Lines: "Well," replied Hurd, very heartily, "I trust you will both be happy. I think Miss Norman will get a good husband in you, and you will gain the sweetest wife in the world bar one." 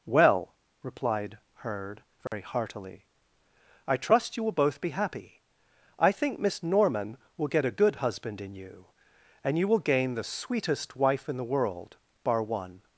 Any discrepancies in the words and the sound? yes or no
yes